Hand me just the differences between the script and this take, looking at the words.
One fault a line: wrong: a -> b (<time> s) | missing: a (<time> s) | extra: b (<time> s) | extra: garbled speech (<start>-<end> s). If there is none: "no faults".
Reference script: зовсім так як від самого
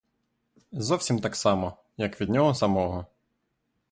extra: само (1.4 s)
extra: нього (2.3 s)